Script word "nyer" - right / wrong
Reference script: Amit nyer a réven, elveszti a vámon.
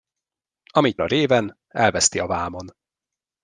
wrong